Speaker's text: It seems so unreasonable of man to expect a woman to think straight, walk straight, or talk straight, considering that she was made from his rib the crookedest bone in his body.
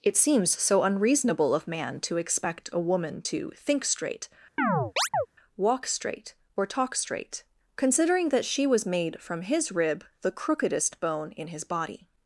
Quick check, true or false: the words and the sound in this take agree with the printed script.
false